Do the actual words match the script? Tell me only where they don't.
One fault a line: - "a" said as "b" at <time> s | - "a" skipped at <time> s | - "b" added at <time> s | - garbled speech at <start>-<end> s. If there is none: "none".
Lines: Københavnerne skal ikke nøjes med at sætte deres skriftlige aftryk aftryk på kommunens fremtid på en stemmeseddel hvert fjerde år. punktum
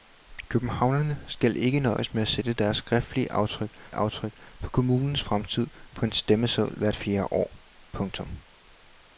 none